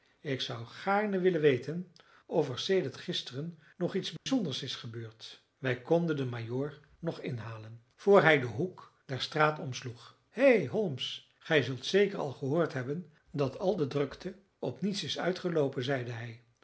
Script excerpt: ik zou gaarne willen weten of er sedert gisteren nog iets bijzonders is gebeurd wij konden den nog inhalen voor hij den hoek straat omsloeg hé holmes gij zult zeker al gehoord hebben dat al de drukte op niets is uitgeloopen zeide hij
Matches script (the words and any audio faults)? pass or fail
fail